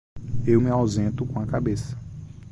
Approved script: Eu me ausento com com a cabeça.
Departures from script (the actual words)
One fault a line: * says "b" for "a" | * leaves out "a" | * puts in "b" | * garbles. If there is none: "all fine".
* leaves out "com"